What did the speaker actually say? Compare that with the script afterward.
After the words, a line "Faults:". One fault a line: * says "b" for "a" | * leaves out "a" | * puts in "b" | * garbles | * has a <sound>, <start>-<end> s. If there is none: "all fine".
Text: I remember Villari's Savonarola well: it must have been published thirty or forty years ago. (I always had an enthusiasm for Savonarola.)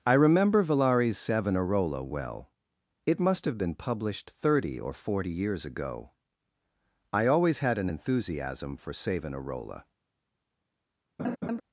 I remember Villari's Savonarola well: it must have been published thirty or forty years ago. (I always had an enthusiasm for Savonarola.)
Faults:
* has a laugh, 11.2-11.6 s